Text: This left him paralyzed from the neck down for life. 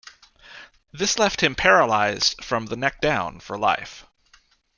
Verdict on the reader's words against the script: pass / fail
pass